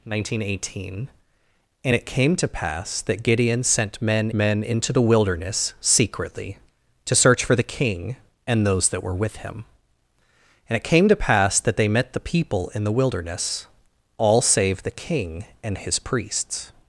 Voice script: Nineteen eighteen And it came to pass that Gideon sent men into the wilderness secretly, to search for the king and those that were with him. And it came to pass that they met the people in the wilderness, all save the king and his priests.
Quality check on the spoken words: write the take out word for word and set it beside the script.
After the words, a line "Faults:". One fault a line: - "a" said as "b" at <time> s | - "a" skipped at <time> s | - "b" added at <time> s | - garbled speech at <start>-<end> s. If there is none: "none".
Nineteen eighteen And it came to pass that Gideon sent men men into the wilderness secretly, to search for the king and those that were with him. And it came to pass that they met the people in the wilderness, all save the king and his priests.
Faults:
- "men" added at 4.3 s